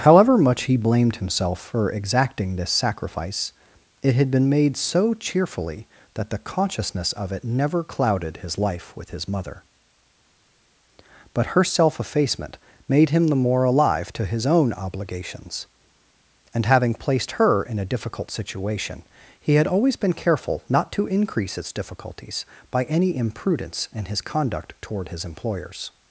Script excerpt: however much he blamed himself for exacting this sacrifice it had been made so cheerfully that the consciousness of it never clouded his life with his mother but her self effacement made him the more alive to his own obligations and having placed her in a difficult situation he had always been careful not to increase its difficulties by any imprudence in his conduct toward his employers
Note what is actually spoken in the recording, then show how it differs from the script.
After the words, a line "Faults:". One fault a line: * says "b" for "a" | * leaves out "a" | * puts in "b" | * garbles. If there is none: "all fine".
however much he blamed himself for exacting this sacrifice it had been made so cheerfully that the consciousness of it never clouded his life with his mother but her self effacement made him the more alive to his own obligations and having placed her in a difficult situation he had always been careful not to increase its difficulties by any imprudence in his conduct toward his employers
Faults:
all fine